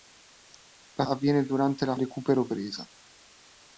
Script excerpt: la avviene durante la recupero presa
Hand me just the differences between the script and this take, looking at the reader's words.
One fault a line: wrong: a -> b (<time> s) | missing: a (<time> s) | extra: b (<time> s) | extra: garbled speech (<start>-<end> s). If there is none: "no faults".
no faults